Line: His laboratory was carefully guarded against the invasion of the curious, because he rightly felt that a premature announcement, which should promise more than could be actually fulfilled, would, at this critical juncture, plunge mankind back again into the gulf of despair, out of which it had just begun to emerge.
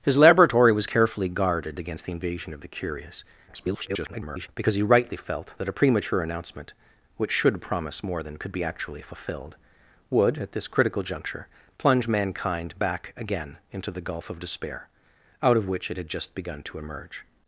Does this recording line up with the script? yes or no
no